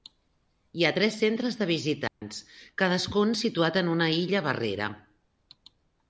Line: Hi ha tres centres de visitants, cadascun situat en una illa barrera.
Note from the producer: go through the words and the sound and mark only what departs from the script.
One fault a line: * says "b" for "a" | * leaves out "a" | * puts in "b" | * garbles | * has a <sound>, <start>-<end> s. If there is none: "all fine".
* has a dropout, 2.1-2.2 s